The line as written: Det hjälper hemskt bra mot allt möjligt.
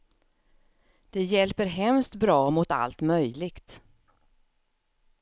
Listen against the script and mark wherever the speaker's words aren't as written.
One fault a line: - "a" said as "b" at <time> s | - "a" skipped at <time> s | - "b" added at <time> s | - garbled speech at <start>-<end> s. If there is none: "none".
none